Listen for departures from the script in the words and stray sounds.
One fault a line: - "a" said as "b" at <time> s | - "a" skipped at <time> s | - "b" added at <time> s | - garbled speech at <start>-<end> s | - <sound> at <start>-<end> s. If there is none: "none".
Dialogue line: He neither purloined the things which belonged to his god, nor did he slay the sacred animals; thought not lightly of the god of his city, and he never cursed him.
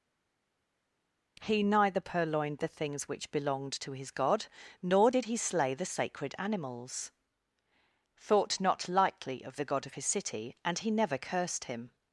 none